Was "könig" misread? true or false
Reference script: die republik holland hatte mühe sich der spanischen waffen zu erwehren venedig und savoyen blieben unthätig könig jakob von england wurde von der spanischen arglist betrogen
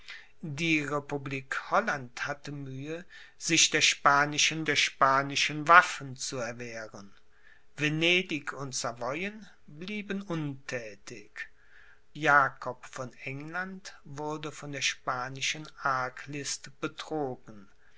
true